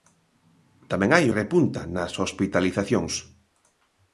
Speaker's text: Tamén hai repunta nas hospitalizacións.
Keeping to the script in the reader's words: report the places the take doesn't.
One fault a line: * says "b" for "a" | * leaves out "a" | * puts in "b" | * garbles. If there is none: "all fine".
all fine